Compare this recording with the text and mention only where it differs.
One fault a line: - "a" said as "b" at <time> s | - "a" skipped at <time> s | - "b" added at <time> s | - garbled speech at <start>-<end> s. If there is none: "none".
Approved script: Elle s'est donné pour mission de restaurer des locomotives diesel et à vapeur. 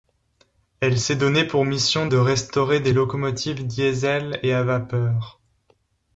none